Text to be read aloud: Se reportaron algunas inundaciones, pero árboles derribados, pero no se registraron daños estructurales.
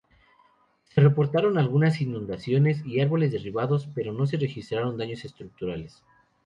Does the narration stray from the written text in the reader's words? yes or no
yes